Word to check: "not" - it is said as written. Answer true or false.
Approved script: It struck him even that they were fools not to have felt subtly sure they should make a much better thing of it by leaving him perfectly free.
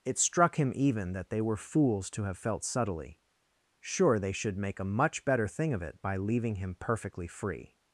false